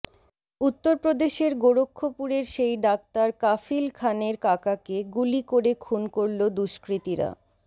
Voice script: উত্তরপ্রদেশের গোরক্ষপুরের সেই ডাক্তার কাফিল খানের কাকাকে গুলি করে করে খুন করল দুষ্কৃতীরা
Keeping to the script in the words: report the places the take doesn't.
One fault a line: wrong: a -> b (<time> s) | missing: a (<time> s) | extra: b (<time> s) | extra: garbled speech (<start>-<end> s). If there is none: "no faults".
missing: করে (5.7 s)